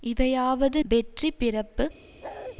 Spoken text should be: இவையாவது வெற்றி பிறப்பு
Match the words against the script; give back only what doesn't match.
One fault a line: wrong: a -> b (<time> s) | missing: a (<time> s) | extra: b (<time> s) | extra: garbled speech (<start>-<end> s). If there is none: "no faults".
no faults